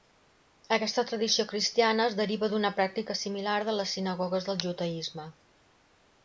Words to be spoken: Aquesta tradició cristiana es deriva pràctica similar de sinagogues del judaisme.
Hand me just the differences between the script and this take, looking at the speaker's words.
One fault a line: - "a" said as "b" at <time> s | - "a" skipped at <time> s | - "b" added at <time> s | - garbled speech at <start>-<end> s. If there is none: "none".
- "d'una" added at 2.5 s
- "les" added at 3.8 s